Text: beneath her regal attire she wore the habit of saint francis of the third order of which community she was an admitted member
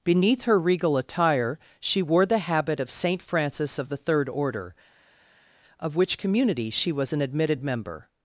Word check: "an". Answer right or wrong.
right